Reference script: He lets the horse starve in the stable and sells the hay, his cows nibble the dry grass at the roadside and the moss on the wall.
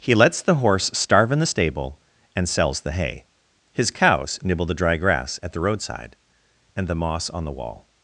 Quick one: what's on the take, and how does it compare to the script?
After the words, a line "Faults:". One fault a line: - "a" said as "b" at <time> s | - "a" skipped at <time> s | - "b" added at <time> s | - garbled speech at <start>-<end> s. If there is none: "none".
He lets the horse starve in the stable and sells the hay, his cows nibble the dry grass at the roadside and the moss on the wall.
Faults:
none